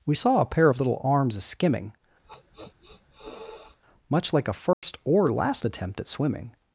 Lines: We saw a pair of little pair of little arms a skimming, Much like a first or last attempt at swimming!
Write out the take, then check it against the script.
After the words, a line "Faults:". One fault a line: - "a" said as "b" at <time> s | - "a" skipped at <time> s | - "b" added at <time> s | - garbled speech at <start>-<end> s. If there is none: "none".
We saw a pair of little arms a skimming, Much like a first or last attempt at swimming!
Faults:
- "pair of little" skipped at 1.0 s